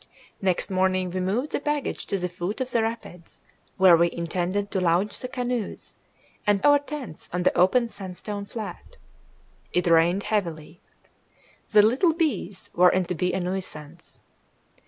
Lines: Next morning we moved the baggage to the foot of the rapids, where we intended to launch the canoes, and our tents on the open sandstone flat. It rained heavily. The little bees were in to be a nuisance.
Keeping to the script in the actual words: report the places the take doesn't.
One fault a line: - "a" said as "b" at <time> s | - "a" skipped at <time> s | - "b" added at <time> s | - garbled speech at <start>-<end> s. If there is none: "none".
none